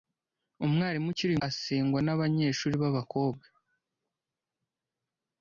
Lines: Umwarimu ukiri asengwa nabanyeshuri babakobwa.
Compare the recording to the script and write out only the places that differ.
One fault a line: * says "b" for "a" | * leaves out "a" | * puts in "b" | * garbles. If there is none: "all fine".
all fine